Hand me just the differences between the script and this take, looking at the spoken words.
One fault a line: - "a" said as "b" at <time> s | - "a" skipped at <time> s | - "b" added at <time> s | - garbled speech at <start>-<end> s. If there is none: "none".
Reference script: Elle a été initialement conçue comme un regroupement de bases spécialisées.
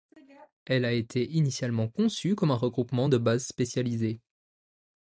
none